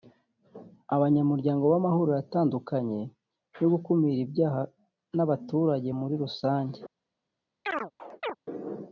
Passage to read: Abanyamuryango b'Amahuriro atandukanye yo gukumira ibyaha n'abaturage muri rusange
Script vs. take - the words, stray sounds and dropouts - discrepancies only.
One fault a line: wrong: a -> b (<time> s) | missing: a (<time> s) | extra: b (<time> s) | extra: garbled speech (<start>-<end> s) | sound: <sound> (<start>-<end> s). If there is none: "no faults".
sound: chirp (7.7-8.4 s)